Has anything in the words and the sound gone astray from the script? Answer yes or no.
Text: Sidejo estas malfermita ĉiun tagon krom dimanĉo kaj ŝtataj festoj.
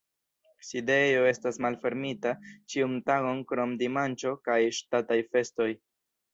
no